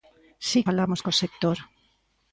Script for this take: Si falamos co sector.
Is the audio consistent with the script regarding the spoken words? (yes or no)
yes